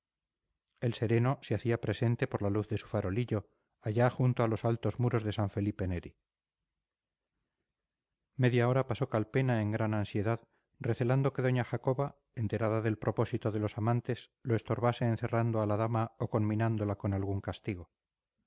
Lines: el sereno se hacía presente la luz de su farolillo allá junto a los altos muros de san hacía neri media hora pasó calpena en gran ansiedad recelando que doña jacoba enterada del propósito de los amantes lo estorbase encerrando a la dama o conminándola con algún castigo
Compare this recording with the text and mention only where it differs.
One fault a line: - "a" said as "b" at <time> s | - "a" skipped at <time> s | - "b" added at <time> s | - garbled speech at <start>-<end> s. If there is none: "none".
- "por" added at 2.3 s
- "hacía" said as "felipe" at 5.5 s